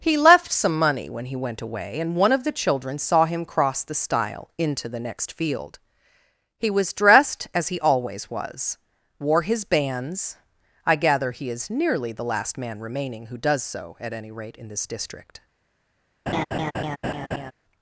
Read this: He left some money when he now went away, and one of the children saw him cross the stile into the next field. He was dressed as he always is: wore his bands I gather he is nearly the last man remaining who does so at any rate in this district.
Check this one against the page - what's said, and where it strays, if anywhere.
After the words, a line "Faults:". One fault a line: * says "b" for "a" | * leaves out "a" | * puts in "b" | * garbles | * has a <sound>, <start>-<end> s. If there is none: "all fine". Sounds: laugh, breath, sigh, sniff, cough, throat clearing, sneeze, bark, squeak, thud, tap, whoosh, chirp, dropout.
He left some money when he went away, and one of the children saw him cross the stile into the next field. He was dressed as he always was: wore his bands I gather he is nearly the last man remaining who does so at any rate in this district.
Faults:
* leaves out "now"
* says "was" for "is"
* has a laugh, 16.3-17.5 s